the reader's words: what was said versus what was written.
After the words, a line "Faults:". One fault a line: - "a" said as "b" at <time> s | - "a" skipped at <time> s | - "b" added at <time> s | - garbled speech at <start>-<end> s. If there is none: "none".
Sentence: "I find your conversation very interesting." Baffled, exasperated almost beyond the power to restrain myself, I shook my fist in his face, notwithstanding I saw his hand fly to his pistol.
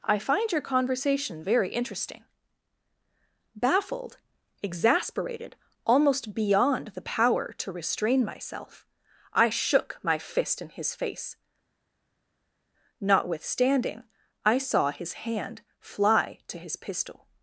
"I find your conversation very interesting." Baffled, exasperated almost beyond the power to restrain myself, I shook my fist in his face, notwithstanding I saw his hand fly to his pistol.
Faults:
none